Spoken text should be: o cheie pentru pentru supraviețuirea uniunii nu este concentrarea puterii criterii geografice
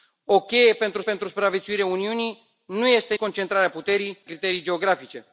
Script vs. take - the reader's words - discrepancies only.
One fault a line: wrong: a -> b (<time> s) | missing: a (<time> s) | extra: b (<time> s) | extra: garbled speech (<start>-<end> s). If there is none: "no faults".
no faults